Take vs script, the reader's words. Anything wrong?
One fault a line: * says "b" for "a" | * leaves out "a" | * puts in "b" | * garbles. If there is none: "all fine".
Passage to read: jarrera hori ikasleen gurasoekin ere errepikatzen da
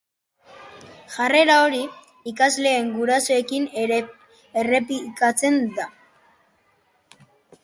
all fine